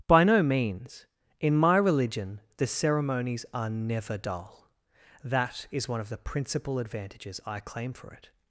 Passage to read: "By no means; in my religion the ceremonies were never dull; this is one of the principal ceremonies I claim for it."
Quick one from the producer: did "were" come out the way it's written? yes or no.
no